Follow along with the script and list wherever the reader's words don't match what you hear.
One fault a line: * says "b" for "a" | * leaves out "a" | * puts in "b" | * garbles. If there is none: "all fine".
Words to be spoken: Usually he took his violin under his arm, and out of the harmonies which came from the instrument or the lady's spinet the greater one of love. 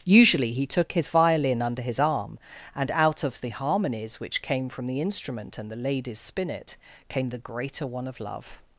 * says "and" for "or"
* puts in "came"